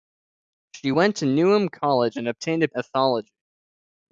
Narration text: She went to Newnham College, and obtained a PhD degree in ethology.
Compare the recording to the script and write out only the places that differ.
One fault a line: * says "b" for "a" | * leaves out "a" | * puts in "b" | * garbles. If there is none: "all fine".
* leaves out "PhD degree in"